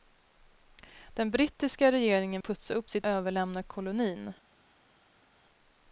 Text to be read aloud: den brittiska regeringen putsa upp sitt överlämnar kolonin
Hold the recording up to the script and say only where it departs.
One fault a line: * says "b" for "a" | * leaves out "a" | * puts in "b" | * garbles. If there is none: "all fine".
all fine